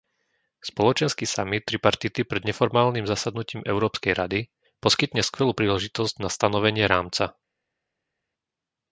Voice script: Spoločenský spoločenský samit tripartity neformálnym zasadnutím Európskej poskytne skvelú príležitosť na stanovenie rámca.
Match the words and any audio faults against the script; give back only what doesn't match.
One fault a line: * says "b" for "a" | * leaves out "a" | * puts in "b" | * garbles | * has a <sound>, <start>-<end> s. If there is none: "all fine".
* leaves out "spoločenský"
* puts in "pred"
* puts in "rady"